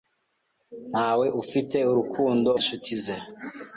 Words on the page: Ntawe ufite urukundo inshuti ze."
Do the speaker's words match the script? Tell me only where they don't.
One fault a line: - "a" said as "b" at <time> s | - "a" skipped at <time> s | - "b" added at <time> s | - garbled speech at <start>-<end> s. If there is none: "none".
none